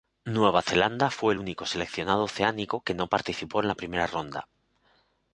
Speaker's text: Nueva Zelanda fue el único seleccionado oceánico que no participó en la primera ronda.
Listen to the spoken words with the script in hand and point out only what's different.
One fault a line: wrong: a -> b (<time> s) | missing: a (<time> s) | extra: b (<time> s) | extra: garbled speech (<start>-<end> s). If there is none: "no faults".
no faults